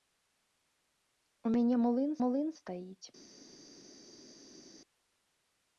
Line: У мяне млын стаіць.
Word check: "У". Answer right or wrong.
right